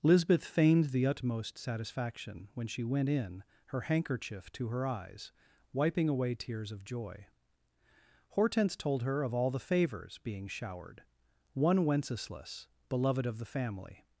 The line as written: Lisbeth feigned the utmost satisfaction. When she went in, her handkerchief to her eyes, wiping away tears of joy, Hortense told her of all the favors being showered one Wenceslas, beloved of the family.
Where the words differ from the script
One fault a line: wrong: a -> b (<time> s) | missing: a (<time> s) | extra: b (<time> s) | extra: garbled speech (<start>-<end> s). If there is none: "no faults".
no faults